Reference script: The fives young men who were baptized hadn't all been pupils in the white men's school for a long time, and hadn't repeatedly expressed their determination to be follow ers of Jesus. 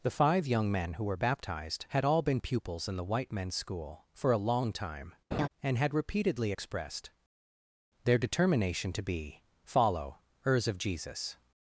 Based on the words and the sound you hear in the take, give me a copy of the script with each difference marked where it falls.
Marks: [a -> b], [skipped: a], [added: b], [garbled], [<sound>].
The [fives -> five] young men who were baptized [hadn't -> had] all been pupils in the white men's school for a long time, [laugh] and [hadn't -> had] repeatedly expressed their determination to be follow ers of Jesus.